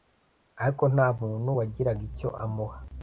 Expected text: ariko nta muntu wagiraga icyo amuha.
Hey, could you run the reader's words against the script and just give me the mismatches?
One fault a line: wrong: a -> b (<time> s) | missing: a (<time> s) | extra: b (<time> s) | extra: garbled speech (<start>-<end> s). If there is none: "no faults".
no faults